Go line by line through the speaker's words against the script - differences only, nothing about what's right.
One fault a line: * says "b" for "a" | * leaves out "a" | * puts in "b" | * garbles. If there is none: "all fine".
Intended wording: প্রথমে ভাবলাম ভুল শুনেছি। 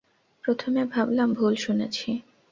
all fine